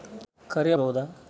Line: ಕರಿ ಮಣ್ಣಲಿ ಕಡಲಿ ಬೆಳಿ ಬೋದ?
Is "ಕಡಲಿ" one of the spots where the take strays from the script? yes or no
yes